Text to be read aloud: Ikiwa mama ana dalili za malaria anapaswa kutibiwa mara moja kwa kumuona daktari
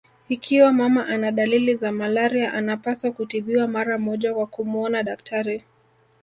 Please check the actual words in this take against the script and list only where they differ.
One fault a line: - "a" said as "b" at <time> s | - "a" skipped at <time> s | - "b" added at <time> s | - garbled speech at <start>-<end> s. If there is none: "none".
none